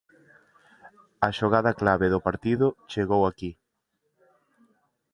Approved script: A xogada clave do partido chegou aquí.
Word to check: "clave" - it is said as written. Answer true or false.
true